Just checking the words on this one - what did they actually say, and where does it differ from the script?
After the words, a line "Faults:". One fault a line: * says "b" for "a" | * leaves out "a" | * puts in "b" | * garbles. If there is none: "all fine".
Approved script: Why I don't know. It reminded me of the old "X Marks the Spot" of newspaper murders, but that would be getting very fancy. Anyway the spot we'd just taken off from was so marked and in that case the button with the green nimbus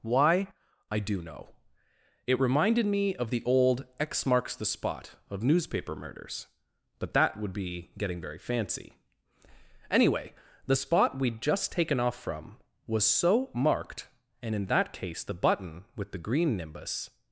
Why I do know. It reminded me of the old "X Marks the Spot" of newspaper murders, but that would be getting very fancy. Anyway the spot we'd just taken off from was so marked and in that case the button with the green nimbus
Faults:
* says "do" for "don't"